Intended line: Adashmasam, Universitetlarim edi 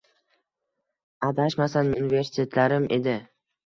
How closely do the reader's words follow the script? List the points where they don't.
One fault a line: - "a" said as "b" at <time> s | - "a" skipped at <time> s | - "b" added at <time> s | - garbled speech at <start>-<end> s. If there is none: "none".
none